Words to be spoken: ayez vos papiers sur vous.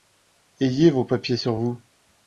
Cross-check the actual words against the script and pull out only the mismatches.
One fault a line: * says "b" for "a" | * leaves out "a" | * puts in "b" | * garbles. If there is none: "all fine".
all fine